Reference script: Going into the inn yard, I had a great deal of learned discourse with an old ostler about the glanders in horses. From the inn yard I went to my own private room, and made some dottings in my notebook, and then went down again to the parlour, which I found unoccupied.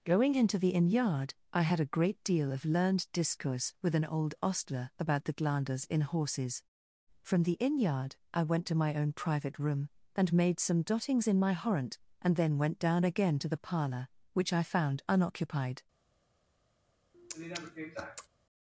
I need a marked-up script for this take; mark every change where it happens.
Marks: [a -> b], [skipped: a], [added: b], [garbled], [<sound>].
Going into the inn yard, I had a great deal of learned discourse with an old ostler about the glanders in horses. From the inn yard I went to my own private room, and made some dottings in my [notebook, -> horrent] and then went down again to the parlour, which I found unoccupied. [sniff]